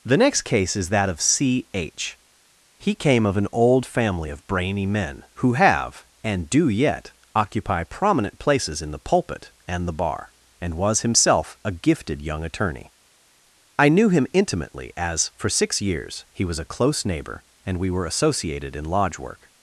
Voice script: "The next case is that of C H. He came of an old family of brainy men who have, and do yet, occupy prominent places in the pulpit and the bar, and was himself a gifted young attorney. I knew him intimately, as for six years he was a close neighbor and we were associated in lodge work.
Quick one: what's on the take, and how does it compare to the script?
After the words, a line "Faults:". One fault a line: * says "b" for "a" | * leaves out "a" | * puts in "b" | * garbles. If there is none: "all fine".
"The next case is that of C H. He came of an old family of brainy men who have, and do yet, occupy prominent places in the pulpit and the bar, and was himself a gifted young attorney. I knew him intimately, as for six years he was a close neighbor and we were associated in lodge work.
Faults:
all fine